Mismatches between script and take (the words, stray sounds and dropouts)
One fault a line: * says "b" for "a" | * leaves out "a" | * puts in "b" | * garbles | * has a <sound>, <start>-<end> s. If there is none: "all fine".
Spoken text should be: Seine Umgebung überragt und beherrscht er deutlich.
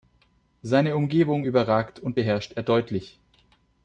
all fine